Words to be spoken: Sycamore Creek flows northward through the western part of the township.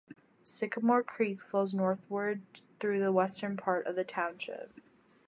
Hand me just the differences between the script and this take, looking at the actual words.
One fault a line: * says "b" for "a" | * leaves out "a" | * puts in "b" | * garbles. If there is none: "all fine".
all fine